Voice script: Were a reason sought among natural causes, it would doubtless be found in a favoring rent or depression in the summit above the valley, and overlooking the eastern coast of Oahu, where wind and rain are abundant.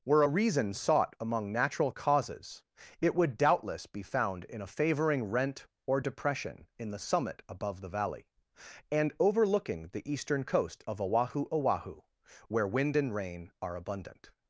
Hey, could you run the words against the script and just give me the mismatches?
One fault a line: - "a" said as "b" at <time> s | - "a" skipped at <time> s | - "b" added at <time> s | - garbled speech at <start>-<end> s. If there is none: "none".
- "Oahu" added at 11.5 s